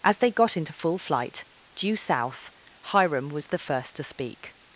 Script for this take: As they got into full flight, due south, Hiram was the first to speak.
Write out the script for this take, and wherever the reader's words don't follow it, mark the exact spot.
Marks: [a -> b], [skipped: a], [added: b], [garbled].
As they got into full flight, due south, Hiram was the first to speak.